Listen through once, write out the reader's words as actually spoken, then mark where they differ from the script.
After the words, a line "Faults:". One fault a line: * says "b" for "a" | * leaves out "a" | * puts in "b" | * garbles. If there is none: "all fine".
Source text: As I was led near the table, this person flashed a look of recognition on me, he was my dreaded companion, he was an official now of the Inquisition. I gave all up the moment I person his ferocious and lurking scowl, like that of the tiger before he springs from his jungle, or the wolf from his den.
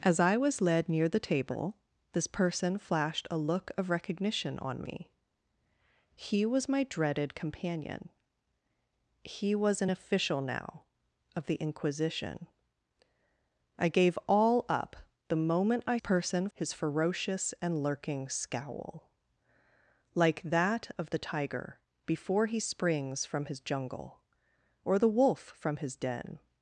As I was led near the table, this person flashed a look of recognition on me, he was my dreaded companion, he was an official now of the Inquisition. I gave all up the moment I person his ferocious and lurking scowl, like that of the tiger before he springs from his jungle, or the wolf from his den.
Faults:
all fine